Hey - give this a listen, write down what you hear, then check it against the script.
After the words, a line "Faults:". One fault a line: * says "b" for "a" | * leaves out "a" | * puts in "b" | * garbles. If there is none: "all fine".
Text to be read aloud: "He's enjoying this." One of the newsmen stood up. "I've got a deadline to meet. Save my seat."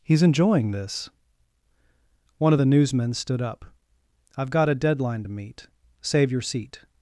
"He's enjoying this." One of the newsmen stood up. "I've got a deadline to meet. Save your seat."
Faults:
* says "your" for "my"